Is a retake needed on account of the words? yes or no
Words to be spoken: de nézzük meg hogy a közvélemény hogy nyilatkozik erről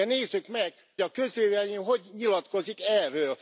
yes